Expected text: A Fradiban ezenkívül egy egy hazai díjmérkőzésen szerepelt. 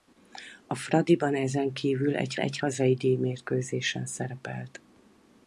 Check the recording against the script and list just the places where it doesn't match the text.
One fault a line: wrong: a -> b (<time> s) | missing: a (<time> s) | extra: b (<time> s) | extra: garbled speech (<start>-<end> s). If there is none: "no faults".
no faults